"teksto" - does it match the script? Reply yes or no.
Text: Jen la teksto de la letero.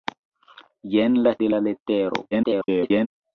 no